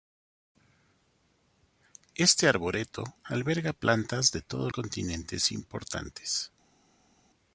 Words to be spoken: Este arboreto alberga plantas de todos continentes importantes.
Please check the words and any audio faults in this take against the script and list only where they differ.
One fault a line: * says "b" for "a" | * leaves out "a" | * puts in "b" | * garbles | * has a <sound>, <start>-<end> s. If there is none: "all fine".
all fine